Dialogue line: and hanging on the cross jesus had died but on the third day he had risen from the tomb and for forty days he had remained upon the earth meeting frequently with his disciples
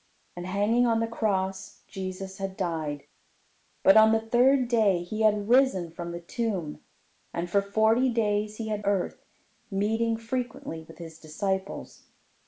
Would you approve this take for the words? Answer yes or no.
no